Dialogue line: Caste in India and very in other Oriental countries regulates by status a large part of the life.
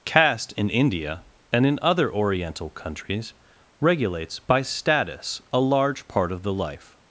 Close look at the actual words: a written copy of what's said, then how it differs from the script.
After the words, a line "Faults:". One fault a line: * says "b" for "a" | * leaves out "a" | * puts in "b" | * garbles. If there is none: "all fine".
Caste in India and in other Oriental countries regulates by status a large part of the life.
Faults:
* leaves out "very"